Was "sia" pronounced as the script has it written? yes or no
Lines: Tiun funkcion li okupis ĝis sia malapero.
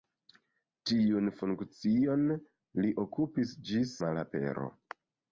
no